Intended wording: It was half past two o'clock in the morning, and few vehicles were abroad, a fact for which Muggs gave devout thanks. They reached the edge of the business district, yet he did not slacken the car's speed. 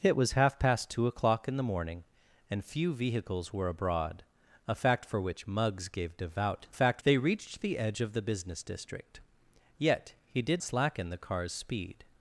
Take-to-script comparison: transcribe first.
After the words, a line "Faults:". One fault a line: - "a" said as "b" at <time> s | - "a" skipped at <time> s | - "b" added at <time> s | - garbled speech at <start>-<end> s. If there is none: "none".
It was half past two o'clock in the morning, and few vehicles were abroad, a fact for which Muggs gave devout fact. They reached the edge of the business district, yet he did slacken the car's speed.
Faults:
- "thanks" said as "fact" at 6.7 s
- "not" skipped at 10.6 s